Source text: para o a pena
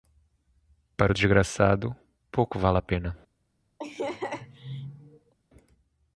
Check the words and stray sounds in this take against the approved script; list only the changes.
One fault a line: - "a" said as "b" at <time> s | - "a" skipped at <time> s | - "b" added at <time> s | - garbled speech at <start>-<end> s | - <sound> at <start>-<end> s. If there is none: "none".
- "desgraçado pouco vale" added at 1.1 s
- laugh at 3.8-5.3 s